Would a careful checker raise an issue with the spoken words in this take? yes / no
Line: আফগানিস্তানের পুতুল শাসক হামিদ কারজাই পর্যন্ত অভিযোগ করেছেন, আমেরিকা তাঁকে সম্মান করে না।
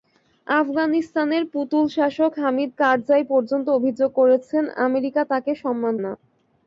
yes